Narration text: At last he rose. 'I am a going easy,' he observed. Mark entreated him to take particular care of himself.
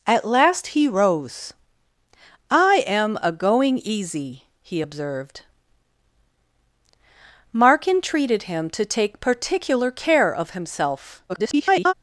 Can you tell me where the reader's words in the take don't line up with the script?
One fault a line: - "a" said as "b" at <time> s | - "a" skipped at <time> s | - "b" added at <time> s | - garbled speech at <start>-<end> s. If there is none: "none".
- garbled speech at 11.3-11.9 s